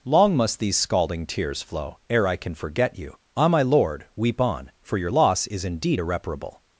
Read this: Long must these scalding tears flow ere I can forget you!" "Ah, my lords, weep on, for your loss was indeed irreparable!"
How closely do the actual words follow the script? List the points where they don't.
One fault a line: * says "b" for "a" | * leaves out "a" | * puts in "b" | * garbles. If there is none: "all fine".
* says "lord" for "lords"
* says "is" for "was"